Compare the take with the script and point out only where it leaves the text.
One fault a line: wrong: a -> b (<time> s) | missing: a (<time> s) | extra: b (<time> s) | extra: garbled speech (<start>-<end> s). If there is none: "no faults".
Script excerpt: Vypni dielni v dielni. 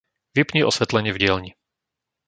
wrong: dielni -> osvetlenie (0.7 s)